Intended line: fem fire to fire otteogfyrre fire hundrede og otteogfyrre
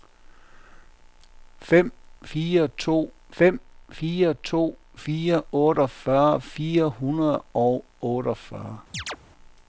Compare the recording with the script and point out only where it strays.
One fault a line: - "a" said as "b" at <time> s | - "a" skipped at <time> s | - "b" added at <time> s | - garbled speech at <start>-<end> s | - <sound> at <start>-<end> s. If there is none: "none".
- "fem fire to" added at 3.4 s
- chirp at 8.9-9.2 s